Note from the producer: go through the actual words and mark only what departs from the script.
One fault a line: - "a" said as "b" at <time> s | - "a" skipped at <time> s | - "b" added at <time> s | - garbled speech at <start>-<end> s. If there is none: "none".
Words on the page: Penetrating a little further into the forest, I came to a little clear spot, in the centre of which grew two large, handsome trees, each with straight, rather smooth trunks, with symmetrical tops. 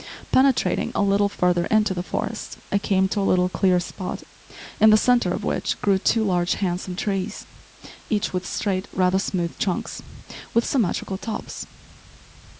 none